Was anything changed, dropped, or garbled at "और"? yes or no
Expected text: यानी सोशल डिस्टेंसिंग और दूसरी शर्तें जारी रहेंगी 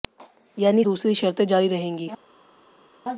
yes